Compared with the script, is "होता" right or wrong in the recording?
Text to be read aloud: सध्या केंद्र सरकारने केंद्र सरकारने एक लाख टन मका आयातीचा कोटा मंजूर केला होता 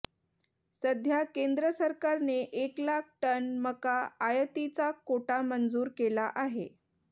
wrong